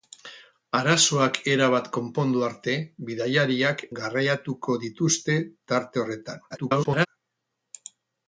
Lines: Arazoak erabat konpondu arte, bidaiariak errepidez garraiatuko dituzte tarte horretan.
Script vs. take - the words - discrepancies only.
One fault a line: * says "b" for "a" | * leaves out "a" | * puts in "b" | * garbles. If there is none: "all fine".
* leaves out "errepidez"
* garbles